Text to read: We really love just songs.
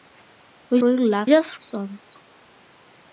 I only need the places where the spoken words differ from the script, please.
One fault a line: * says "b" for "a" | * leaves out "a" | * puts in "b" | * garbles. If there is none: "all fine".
all fine